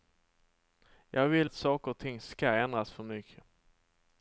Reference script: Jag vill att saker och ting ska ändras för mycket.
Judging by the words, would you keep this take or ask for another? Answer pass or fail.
pass